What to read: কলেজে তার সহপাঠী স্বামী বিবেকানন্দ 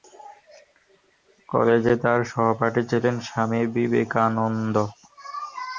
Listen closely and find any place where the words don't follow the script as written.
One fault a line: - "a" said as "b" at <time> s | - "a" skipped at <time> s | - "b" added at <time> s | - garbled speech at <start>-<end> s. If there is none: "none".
- "ছিলেন" added at 2.9 s